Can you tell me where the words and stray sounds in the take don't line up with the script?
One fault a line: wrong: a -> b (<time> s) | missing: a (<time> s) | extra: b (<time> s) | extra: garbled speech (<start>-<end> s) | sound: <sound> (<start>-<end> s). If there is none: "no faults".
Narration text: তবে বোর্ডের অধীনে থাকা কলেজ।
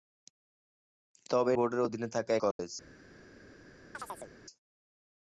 sound: dropout (2.5-2.6 s)
sound: chirp (3.9-4.3 s)